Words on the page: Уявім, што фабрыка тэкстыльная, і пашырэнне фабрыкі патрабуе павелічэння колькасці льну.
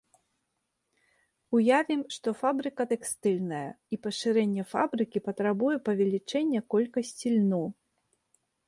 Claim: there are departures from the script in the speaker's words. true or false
false